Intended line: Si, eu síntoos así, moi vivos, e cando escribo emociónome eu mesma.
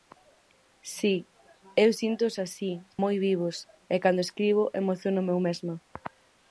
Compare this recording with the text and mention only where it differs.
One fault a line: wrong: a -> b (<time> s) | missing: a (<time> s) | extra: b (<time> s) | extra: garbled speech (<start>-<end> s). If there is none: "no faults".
no faults